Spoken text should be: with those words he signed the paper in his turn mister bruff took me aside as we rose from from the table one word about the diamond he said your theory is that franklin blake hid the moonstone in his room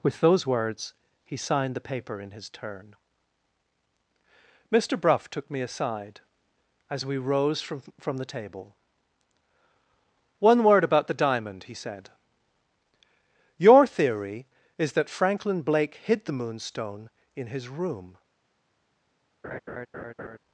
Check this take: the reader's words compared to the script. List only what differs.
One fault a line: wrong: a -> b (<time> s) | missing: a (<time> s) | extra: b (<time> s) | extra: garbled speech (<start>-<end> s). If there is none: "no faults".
no faults